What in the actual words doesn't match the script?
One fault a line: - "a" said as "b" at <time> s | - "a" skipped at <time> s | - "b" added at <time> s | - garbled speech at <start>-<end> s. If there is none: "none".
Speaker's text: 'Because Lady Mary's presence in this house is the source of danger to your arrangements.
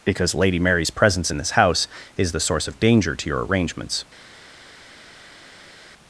none